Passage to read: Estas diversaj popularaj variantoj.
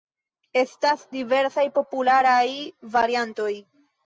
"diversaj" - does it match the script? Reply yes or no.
yes